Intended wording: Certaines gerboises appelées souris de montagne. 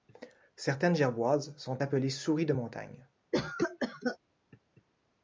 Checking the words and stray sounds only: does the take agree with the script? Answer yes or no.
no